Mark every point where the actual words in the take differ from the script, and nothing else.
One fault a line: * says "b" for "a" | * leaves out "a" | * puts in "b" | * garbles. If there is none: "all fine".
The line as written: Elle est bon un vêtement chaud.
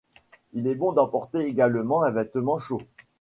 * says "Il" for "Elle"
* puts in "d'emporter également"